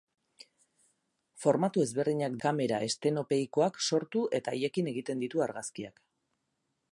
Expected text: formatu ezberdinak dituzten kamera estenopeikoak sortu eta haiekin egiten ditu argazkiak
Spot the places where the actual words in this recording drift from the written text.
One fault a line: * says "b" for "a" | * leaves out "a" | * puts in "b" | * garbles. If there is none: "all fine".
* leaves out "dituzten"